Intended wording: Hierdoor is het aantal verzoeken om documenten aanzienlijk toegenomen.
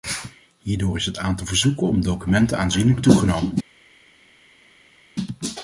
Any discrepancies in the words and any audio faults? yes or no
no